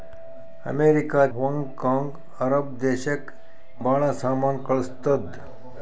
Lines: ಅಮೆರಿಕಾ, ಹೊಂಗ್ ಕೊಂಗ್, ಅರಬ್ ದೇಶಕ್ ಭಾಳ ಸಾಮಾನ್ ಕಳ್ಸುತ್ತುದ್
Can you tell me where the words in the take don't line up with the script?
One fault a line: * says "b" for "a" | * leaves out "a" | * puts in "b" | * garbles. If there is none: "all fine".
all fine